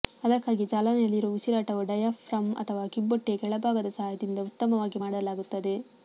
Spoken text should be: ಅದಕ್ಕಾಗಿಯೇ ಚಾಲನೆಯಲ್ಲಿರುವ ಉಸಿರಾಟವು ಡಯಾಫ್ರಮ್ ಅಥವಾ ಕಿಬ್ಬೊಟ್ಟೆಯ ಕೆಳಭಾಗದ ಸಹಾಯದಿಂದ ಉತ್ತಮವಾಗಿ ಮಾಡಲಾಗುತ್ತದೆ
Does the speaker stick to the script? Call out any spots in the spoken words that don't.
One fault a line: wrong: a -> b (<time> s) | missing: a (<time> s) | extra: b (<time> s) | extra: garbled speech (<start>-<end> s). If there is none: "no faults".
no faults